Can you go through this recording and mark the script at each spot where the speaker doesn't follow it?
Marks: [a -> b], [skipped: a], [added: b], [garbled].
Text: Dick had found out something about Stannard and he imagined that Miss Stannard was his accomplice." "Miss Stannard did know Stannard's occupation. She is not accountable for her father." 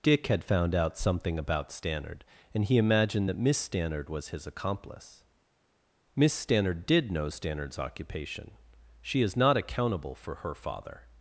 Dick had found out something about Stannard and he imagined that Miss Stannard was his accomplice." "Miss Stannard did know Stannard's occupation. She is not accountable for her father."